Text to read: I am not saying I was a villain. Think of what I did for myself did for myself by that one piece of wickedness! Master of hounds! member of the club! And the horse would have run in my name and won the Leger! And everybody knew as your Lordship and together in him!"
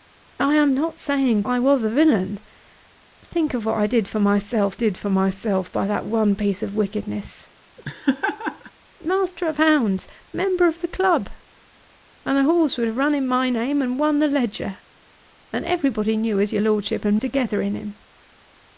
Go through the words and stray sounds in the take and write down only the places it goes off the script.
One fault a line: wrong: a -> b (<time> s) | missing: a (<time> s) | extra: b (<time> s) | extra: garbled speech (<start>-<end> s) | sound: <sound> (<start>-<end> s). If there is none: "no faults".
sound: laugh (7.8-8.7 s)